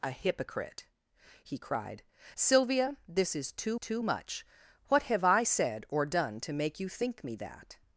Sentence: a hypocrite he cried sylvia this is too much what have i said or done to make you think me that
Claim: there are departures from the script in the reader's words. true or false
true